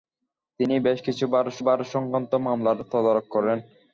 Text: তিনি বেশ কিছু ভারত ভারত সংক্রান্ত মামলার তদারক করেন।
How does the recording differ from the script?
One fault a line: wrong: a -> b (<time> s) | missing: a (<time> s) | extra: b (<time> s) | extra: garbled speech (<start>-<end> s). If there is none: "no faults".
no faults